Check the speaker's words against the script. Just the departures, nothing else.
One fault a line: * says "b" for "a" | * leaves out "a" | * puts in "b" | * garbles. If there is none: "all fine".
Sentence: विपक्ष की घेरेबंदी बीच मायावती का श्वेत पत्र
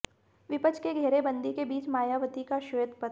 * puts in "के"